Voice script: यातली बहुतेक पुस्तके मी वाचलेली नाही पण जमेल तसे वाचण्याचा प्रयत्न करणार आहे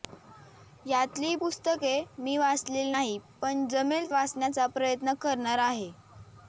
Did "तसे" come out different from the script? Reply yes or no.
yes